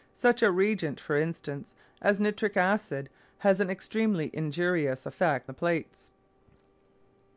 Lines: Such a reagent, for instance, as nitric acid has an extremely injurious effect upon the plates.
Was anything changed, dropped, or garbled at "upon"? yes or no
yes